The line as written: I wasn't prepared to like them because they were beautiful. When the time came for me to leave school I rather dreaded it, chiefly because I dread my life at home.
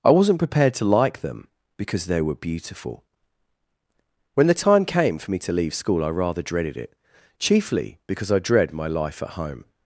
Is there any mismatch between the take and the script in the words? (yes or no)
no